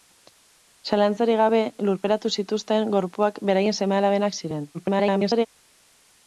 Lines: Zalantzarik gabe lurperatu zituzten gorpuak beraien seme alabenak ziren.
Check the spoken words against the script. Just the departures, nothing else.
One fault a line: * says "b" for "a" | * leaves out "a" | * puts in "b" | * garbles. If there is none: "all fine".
* garbles